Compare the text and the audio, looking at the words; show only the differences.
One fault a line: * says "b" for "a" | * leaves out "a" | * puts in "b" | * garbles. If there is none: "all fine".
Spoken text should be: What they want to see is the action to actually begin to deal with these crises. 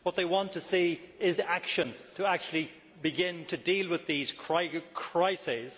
all fine